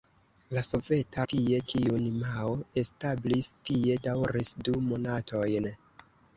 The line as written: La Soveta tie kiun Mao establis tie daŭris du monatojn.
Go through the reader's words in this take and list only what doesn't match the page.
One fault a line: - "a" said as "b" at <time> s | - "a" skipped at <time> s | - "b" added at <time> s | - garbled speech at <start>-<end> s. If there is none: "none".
none